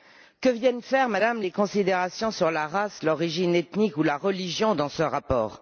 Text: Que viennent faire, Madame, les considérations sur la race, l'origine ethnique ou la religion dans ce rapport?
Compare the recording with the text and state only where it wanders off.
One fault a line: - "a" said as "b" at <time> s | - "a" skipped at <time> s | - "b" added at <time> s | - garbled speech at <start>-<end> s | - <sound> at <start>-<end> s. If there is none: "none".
none